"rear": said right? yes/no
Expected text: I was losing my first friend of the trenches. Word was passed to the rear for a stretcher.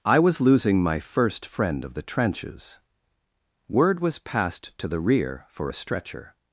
yes